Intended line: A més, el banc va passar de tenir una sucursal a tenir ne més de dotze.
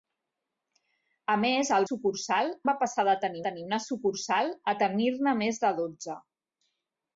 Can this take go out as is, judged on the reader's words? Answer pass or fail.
fail